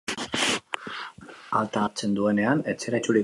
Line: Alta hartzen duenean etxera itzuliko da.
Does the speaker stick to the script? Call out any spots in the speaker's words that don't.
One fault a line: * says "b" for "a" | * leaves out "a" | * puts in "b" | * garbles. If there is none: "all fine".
all fine